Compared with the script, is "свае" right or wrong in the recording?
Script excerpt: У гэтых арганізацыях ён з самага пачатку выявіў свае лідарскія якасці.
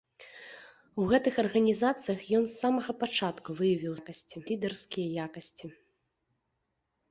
wrong